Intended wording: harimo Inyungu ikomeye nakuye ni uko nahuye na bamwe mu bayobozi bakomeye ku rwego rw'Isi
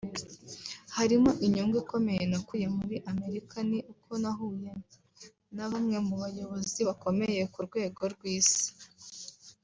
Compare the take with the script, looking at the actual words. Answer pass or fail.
fail